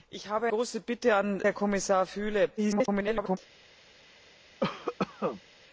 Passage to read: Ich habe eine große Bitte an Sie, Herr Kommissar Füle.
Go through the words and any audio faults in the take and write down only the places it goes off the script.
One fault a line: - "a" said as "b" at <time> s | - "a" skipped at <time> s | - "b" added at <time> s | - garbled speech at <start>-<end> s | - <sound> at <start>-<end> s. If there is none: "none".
- "eine" skipped at 0.5 s
- "Sie" skipped at 1.4 s
- garbled speech at 2.6-3.4 s
- cough at 4.6-5.4 s